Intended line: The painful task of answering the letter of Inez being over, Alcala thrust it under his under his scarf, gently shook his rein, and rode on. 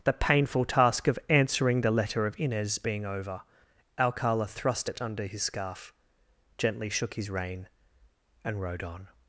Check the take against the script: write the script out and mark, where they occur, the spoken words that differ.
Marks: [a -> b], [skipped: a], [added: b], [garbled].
The painful task of answering the letter of Inez being over, Alcala thrust it under his [skipped: under his] scarf, gently shook his rein, and rode on.